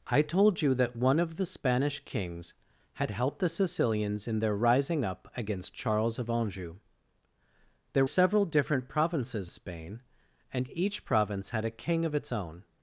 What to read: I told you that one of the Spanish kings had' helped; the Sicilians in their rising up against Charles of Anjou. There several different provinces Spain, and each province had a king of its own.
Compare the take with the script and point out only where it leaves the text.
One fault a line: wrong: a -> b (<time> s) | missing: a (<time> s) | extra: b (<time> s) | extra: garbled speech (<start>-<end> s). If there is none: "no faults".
no faults